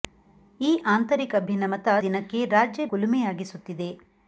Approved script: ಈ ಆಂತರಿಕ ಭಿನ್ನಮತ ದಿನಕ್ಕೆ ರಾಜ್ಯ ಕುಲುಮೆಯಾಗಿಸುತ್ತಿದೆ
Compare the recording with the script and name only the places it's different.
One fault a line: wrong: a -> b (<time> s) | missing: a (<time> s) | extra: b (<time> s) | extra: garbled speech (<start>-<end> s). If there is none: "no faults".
no faults